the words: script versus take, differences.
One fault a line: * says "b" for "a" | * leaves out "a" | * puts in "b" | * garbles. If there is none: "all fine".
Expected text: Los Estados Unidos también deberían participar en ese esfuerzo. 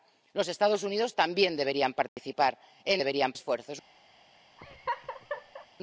* says "deberían" for "ese"